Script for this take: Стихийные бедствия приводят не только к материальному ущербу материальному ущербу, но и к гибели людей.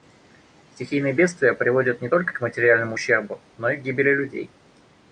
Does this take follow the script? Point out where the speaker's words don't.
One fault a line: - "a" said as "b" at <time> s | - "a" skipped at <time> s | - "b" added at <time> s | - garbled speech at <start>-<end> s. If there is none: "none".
- "материальному ущербу" skipped at 3.4 s